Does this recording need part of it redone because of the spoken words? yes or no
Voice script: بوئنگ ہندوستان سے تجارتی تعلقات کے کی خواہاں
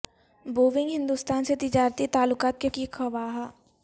no